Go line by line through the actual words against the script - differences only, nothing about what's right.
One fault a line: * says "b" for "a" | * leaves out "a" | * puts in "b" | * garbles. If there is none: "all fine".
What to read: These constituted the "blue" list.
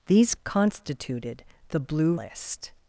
all fine